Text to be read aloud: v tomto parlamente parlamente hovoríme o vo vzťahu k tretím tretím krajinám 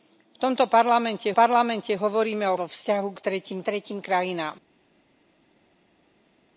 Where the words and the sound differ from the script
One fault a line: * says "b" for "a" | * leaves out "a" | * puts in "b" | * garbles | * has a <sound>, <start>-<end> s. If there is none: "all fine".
all fine